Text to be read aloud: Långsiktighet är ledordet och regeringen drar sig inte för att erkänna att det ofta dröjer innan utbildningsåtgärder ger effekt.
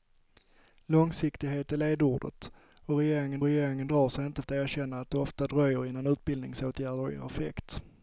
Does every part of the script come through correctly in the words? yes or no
no